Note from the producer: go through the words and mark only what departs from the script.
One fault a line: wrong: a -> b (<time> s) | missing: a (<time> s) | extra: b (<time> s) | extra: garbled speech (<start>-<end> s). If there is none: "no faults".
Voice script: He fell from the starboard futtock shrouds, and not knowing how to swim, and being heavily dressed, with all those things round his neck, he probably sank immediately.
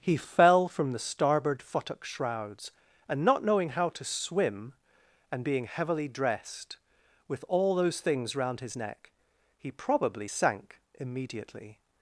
no faults